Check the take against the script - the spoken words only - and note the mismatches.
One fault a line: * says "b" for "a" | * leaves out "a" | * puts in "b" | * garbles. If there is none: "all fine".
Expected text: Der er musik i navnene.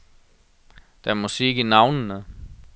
all fine